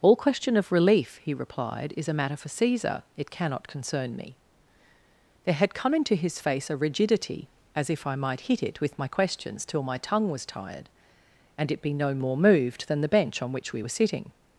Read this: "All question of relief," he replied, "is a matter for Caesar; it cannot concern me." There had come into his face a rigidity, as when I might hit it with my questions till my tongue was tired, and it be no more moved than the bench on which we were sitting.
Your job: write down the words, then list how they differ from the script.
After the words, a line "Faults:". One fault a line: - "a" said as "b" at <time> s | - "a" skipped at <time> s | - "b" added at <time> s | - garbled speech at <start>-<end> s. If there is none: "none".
"All question of relief," he replied, "is a matter for Caesar; it cannot concern me." There had come into his face a rigidity, as if I might hit it with my questions till my tongue was tired, and it be no more moved than the bench on which we were sitting.
Faults:
- "when" said as "if" at 7.9 s